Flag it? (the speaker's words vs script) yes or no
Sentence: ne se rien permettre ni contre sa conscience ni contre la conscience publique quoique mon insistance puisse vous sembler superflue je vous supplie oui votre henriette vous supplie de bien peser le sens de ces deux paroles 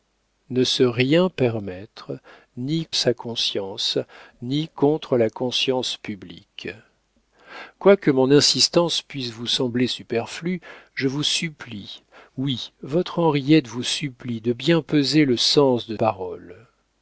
yes